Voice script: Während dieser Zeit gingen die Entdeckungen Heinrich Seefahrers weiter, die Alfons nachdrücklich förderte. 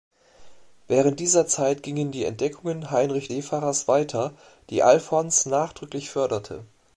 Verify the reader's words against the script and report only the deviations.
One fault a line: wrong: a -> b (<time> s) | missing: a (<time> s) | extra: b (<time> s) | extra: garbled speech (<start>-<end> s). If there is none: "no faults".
no faults